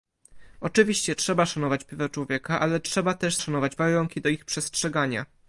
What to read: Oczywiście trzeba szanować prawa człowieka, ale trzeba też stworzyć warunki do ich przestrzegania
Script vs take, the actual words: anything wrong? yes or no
yes